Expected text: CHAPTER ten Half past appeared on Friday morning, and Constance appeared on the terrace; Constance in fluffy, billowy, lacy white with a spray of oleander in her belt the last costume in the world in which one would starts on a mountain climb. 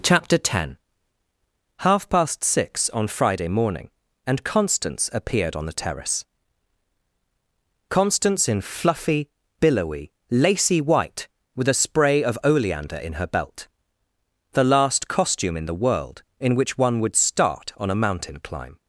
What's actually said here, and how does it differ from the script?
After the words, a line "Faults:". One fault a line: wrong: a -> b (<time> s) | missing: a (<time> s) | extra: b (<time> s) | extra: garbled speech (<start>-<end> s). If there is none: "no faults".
CHAPTER ten Half past six on Friday morning, and Constance appeared on the terrace; Constance in fluffy, billowy, lacy white with a spray of oleander in her belt the last costume in the world in which one would start on a mountain climb.
Faults:
wrong: appeared -> six (2.4 s)
wrong: starts -> start (17.1 s)